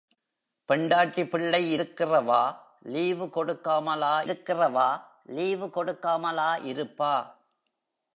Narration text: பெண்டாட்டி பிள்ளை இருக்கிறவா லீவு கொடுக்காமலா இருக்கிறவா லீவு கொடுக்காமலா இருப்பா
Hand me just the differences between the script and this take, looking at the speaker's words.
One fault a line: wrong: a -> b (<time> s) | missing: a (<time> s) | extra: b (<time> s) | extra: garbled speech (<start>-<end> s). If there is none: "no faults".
no faults